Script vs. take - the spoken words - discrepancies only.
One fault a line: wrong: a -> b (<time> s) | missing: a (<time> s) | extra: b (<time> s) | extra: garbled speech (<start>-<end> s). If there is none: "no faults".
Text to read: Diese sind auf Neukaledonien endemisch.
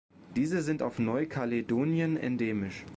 no faults